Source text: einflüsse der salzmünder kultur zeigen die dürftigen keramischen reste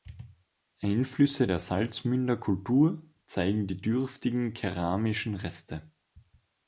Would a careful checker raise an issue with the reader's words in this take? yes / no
no